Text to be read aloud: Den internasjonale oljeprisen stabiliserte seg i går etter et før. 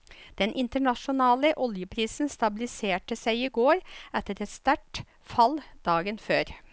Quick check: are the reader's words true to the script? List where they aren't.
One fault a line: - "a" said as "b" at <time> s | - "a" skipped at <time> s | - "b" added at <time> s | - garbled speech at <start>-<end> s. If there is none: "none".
- "sterkt fall dagen" added at 4.5 s